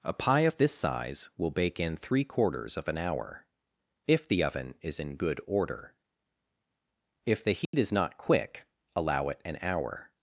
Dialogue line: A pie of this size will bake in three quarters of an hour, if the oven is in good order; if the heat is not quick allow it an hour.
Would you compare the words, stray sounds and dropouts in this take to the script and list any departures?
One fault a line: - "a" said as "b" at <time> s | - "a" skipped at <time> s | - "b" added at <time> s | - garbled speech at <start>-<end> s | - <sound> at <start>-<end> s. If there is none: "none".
- dropout at 7.7-7.7 s